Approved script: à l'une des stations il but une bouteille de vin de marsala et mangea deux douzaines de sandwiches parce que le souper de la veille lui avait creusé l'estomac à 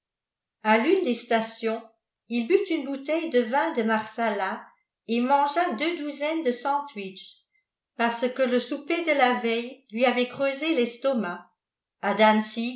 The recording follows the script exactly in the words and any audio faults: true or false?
true